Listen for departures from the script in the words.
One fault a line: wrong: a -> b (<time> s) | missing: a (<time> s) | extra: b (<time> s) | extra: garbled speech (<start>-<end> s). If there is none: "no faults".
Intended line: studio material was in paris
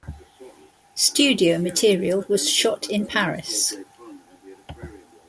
extra: shot (2.5 s)